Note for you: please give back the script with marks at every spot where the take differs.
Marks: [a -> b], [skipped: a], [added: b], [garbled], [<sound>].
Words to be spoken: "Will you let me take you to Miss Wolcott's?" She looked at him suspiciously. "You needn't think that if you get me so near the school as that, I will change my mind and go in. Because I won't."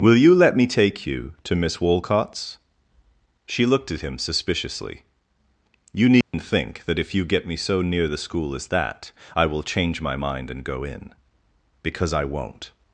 "Will you let me take you to Miss Wolcott's?" She looked at him suspiciously. "You needn't [dropout] think that if you get me so near the school as that, I will change my mind and go in. Because I won't."